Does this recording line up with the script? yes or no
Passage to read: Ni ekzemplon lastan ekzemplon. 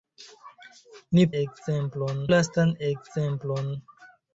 yes